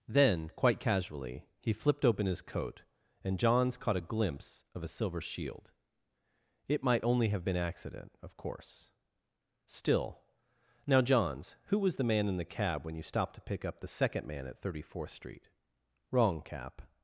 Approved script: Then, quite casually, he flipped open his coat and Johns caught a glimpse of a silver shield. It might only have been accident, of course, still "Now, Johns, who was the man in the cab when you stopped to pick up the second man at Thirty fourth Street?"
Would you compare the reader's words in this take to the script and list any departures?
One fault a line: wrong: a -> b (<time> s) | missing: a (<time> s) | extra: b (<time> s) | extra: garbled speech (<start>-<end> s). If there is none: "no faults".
extra: Wrong Cap (16.1 s)